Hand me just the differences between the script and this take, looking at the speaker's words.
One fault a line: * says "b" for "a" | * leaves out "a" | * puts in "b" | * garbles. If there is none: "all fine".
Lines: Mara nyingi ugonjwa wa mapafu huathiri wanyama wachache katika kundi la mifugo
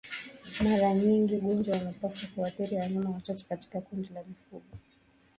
all fine